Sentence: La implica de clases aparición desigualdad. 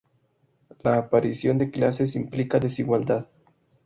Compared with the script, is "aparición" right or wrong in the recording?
wrong